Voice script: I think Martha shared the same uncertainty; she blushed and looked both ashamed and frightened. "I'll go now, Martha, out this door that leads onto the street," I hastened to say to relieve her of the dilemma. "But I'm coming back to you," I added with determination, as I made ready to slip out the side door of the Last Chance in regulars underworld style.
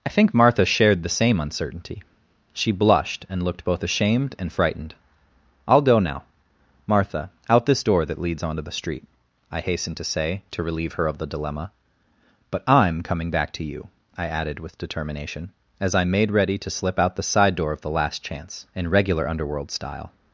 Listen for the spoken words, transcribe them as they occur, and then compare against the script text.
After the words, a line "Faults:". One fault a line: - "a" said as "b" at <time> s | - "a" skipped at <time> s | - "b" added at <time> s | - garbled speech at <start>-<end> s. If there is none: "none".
I think Martha shared the same uncertainty; she blushed and looked both ashamed and frightened. "I'll go now, Martha, out this door that leads onto the street," I hastened to say to relieve her of the dilemma. "But I'm coming back to you," I added with determination, as I made ready to slip out the side door of the Last Chance in regular underworld style.
Faults:
- "regulars" said as "regular" at 18.9 s